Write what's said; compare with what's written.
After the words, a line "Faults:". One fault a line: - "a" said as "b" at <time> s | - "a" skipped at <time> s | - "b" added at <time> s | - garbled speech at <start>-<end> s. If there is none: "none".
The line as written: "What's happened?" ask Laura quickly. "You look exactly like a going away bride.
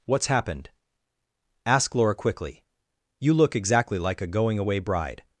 "What's happened?" ask Laura quickly. "You look exactly like a going away bride.
Faults:
none